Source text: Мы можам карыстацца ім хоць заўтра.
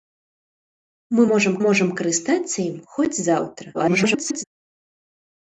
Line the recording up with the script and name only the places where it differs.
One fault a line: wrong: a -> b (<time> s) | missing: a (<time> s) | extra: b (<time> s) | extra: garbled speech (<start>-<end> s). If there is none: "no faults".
extra: можам (1.7 s)
extra: garbled speech (3.7-4.4 s)